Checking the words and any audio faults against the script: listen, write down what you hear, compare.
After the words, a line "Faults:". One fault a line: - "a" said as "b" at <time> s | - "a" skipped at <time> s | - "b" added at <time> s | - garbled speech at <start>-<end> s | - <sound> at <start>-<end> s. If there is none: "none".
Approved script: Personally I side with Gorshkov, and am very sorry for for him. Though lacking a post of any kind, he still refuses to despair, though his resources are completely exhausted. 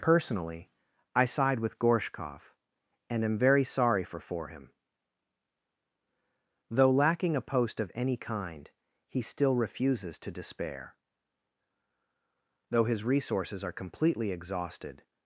Personally I side with Gorshkov, and am very sorry for for him. Though lacking a post of any kind, he still refuses to despair, though his resources are completely exhausted.
Faults:
none